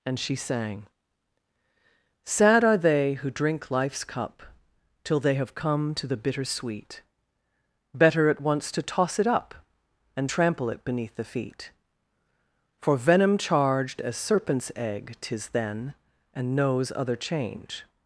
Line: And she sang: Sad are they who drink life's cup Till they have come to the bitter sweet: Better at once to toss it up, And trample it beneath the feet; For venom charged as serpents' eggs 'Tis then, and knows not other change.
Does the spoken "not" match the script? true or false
false